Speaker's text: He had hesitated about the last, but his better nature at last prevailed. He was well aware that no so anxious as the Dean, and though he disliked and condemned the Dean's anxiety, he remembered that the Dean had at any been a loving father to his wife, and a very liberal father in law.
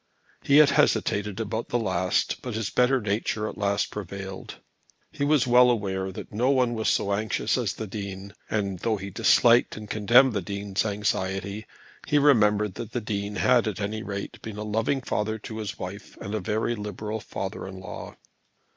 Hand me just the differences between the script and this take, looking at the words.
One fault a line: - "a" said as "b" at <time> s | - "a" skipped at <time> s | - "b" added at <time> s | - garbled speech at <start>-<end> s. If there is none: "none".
- "one was" added at 6.5 s
- "rate" added at 14.0 s